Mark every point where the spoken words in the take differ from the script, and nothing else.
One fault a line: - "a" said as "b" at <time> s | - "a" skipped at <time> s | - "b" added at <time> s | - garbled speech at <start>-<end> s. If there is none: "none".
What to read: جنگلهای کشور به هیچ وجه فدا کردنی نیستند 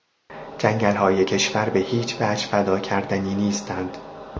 none